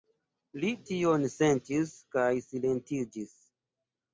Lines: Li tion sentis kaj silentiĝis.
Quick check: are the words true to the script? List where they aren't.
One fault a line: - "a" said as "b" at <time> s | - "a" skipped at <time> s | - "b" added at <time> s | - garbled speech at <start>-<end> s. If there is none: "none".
none